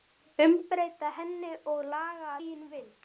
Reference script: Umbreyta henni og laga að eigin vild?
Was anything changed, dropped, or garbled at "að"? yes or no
yes